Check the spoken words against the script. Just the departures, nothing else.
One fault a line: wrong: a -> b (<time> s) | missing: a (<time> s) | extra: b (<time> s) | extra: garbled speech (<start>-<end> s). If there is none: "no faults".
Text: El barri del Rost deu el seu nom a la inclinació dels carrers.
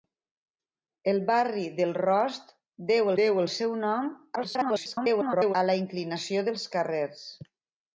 extra: deu (3.2 s)
extra: garbled speech (4.4-5.5 s)